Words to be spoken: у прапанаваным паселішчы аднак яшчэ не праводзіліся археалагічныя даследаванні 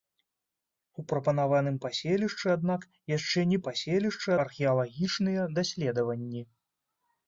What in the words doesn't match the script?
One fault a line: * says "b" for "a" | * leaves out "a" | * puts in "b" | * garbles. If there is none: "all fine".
* says "паселішчы" for "праводзіліся"